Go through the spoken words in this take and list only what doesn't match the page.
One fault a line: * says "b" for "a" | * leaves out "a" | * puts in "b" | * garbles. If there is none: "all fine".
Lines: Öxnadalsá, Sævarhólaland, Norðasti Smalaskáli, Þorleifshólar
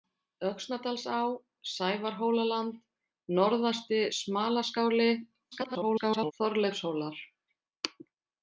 * garbles